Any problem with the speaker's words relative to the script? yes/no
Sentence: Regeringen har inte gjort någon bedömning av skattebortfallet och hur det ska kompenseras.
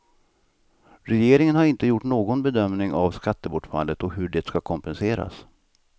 no